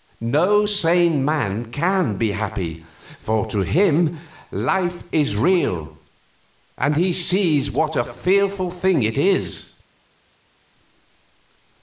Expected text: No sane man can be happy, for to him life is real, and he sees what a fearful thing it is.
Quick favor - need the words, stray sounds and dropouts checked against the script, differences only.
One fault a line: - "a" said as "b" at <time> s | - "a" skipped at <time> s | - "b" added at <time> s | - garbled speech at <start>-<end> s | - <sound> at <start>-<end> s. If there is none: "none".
none